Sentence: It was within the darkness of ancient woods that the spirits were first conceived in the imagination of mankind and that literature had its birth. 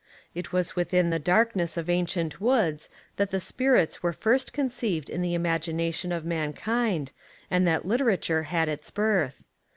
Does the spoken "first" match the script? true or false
true